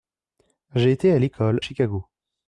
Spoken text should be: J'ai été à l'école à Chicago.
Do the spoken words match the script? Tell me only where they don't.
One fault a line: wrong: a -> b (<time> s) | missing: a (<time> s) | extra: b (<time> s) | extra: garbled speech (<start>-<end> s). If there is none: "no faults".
missing: à (1.6 s)